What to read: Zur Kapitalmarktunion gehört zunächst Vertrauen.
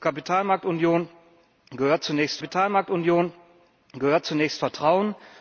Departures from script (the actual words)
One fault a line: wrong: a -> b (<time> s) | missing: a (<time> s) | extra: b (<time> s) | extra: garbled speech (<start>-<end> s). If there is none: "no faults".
extra: Kapitalmarktunion gehört zunächst (2.4 s)